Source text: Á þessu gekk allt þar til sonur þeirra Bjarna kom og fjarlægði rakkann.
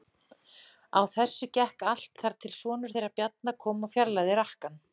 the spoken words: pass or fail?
pass